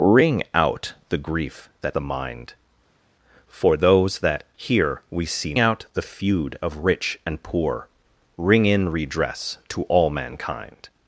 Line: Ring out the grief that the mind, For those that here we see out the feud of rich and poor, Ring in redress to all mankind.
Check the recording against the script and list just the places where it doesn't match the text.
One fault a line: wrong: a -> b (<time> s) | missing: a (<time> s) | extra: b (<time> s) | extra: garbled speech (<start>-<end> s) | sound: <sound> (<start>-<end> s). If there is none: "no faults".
no faults